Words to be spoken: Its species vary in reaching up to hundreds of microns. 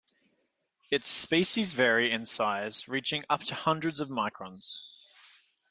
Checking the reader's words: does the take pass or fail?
fail